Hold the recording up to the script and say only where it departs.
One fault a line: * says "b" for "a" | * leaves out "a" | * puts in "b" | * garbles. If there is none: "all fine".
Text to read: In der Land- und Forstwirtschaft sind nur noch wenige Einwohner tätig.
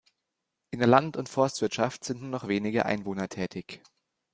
all fine